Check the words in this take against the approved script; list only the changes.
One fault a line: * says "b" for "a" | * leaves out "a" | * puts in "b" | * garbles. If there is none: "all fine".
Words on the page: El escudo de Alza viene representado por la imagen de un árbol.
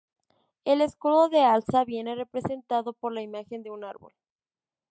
all fine